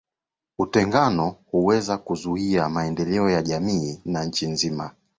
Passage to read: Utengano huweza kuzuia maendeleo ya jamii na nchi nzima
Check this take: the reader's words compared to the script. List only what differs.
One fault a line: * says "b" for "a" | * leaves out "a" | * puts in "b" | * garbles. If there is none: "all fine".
all fine